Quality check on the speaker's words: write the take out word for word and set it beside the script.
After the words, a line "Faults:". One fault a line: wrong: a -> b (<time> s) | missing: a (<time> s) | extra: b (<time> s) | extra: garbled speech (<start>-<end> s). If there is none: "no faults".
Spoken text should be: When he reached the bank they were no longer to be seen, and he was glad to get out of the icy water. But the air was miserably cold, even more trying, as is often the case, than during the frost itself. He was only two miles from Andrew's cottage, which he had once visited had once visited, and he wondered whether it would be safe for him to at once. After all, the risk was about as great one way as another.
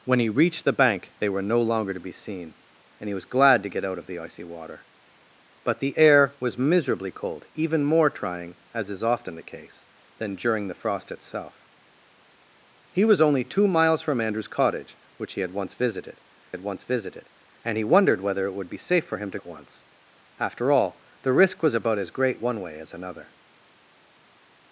When he reached the bank they were no longer to be seen, and he was glad to get out of the icy water. But the air was miserably cold, even more trying, as is often the case, than during the frost itself. He was only two miles from Andrew's cottage, which he had once visited had once visited, and he wondered whether it would be safe for him to at once. After all, the risk was about as great one way as another.
Faults:
no faults